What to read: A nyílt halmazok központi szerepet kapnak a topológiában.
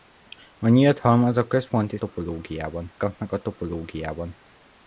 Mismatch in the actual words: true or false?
true